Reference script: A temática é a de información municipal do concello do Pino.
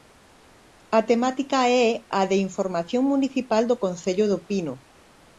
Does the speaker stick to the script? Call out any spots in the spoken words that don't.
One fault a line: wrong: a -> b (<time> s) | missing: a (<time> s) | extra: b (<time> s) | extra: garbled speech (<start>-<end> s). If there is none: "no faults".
no faults